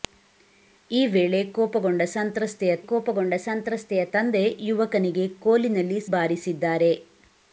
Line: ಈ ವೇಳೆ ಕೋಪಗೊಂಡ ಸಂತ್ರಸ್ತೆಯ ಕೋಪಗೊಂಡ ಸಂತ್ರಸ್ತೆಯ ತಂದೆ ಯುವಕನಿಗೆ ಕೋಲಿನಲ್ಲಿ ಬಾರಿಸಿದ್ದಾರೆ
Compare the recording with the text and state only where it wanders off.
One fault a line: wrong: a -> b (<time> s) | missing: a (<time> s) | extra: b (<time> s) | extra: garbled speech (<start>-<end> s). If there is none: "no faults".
no faults